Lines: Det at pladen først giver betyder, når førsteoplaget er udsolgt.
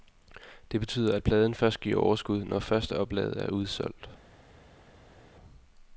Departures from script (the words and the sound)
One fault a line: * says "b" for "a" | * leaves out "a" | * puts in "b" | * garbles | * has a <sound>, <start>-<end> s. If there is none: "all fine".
* puts in "betyder"
* says "overskud" for "betyder"